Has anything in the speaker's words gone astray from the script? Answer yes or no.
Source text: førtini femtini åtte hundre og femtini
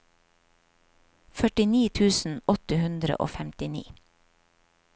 yes